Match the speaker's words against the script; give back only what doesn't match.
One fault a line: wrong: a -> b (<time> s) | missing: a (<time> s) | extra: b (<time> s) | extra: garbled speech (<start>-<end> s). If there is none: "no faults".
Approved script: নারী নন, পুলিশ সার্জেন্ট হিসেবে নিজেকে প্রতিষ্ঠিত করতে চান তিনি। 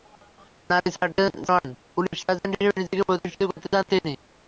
no faults